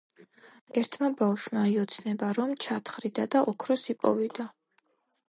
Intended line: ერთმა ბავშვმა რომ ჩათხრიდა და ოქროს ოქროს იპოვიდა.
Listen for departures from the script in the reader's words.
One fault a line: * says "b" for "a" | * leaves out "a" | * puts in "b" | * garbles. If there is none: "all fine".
* puts in "იოცნება"
* leaves out "ოქროს"